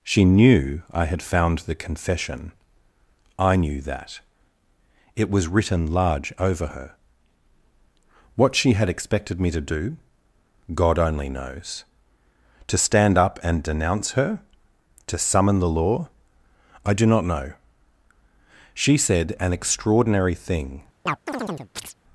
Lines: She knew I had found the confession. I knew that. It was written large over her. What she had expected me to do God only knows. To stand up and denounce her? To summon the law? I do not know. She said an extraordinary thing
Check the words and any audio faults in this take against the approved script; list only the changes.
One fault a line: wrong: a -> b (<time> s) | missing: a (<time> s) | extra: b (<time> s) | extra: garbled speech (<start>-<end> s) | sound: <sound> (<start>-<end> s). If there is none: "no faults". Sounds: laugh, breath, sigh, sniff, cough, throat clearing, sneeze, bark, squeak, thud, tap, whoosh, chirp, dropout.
sound: chirp (21.1-21.9 s)